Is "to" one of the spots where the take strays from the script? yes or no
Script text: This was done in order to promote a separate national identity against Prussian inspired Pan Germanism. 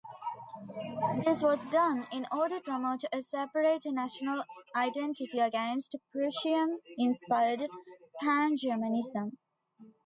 yes